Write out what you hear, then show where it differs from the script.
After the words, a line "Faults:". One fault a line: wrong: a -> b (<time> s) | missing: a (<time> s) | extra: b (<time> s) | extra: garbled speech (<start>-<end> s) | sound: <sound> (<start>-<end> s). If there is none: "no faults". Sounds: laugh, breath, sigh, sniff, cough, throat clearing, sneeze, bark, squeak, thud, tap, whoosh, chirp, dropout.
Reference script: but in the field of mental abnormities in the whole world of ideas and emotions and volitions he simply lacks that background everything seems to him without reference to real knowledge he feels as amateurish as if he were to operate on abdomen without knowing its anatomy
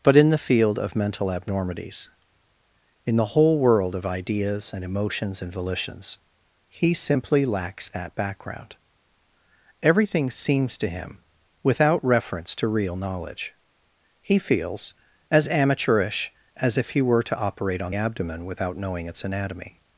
but in the field of mental abnormities in the whole world of ideas and emotions and volitions he simply lacks that background everything seems to him without reference to real knowledge he feels as amateurish as if he were to operate on abdomen without knowing its anatomy
Faults:
no faults